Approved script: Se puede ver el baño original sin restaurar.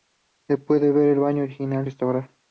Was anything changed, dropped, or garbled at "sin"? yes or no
yes